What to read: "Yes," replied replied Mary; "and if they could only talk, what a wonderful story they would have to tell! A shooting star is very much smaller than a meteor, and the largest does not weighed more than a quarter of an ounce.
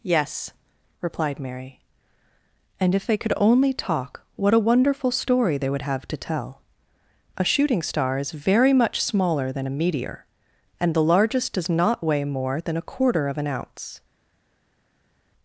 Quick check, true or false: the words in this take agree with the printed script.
false